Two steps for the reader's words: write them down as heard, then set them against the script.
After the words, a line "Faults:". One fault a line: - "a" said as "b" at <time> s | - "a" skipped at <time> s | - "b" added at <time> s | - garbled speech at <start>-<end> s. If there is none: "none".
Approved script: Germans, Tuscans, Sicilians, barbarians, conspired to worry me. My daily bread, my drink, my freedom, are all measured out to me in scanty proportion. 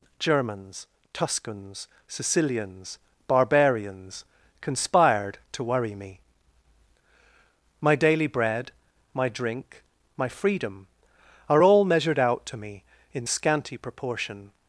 Germans, Tuscans, Sicilians, barbarians, conspired to worry me. My daily bread, my drink, my freedom, are all measured out to me in scanty proportion.
Faults:
none